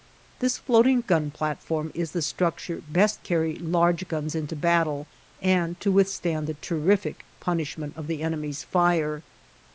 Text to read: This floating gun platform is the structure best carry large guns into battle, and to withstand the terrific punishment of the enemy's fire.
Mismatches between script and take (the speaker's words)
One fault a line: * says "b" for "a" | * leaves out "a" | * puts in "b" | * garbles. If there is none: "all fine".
all fine